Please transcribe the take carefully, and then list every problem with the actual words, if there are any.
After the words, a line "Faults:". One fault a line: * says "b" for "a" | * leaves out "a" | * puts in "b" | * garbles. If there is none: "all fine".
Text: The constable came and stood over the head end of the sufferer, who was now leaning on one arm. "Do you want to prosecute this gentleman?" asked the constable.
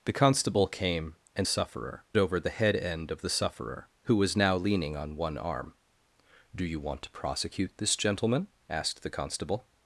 The constable came and sufferer over the head end of the sufferer, who was now leaning on one arm. "Do you want to prosecute this gentleman?" asked the constable.
Faults:
* says "sufferer" for "stood"